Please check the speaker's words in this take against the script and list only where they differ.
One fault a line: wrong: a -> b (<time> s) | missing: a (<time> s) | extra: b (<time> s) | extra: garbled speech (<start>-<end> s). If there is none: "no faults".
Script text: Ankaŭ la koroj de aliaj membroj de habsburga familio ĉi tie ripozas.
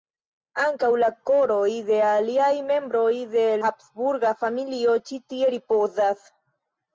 no faults